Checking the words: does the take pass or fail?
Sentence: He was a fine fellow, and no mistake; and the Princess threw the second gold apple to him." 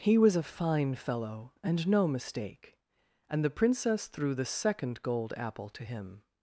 pass